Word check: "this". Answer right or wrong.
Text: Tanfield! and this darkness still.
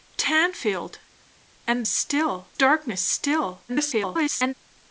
wrong